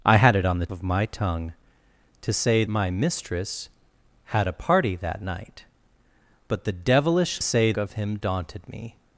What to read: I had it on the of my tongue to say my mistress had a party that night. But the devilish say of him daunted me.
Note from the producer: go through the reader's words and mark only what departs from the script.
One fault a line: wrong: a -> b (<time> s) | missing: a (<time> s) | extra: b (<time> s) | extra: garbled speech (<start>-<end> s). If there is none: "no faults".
no faults